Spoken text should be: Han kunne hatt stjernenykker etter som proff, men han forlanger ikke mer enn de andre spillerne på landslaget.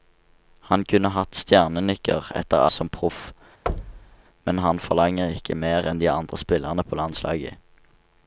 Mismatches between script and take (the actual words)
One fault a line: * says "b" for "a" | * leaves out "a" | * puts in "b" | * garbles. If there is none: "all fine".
all fine